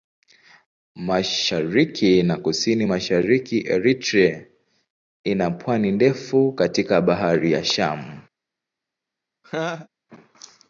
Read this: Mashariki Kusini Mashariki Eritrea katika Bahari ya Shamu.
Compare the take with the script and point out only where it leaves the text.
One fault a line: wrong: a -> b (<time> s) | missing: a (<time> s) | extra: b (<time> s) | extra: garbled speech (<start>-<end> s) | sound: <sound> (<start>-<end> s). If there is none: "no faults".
extra: na (2.2 s)
extra: ina pwani ndefu (5.2 s)
sound: laugh (9.4-9.9 s)